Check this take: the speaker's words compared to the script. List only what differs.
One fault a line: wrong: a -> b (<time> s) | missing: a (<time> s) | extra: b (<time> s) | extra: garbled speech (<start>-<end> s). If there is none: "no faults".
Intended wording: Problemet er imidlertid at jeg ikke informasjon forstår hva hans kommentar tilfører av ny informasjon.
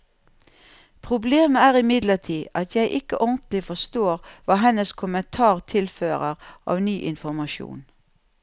wrong: informasjon -> ordentlig (3.2 s)
wrong: hans -> hennes (4.6 s)